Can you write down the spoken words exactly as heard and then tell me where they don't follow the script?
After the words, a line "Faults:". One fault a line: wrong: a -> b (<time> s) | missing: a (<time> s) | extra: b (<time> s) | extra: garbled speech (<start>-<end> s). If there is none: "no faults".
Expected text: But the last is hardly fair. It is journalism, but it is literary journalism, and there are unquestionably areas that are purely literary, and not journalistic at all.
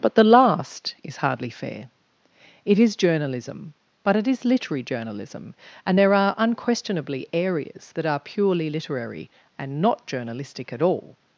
But the last is hardly fair. It is journalism, but it is literary journalism, and there are unquestionably areas that are purely literary, and not journalistic at all.
Faults:
no faults